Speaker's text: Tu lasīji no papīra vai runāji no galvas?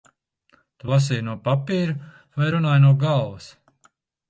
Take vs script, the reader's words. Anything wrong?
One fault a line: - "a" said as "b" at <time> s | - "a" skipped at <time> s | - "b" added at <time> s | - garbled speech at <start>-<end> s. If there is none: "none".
none